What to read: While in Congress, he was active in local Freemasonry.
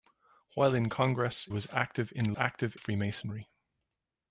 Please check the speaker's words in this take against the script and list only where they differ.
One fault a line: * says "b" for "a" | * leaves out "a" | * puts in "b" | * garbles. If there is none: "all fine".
* leaves out "he"
* says "active" for "local"